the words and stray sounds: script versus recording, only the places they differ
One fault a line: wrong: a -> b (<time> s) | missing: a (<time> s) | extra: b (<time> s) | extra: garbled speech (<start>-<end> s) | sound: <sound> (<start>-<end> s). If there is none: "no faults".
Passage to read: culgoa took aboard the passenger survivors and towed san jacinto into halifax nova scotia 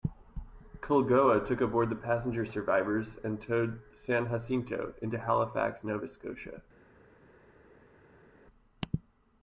no faults